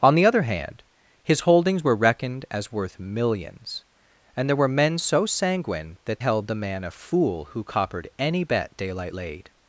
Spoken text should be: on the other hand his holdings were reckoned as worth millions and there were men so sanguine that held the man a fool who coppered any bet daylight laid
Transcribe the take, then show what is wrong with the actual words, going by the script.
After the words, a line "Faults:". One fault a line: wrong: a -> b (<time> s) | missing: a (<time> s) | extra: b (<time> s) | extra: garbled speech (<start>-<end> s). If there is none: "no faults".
on the other hand his holdings were reckoned as worth millions and there were men so sanguine that held the man a fool who coppered any bet daylight laid
Faults:
no faults